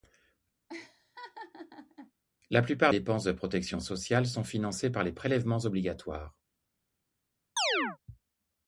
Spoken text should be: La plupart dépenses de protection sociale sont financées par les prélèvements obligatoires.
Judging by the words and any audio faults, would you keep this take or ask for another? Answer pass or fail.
fail